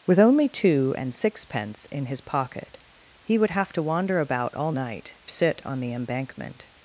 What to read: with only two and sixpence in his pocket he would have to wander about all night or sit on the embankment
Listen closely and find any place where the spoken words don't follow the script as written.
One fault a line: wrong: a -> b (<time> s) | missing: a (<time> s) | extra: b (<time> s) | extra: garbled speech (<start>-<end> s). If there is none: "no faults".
missing: or (5.1 s)